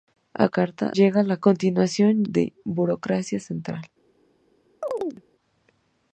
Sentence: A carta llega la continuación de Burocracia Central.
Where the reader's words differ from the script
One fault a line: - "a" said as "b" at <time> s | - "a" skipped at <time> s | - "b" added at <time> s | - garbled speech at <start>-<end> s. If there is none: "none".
none